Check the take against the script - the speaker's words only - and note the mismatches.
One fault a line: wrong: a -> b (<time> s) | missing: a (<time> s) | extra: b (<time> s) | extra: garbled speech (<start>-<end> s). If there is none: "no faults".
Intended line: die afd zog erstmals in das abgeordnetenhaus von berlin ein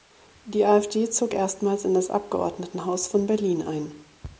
no faults